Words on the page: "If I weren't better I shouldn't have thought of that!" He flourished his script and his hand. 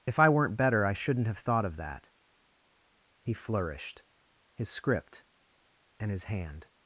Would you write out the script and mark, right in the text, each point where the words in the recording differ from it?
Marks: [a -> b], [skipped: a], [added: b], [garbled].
"If I weren't better I shouldn't have thought of that!" He flourished his script and his hand.